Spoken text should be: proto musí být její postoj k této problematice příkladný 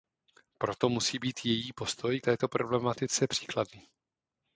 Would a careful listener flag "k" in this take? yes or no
yes